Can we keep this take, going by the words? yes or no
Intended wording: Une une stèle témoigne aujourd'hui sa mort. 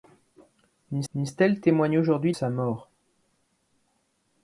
yes